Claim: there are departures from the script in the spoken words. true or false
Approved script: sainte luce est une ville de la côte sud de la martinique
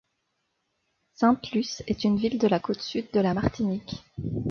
false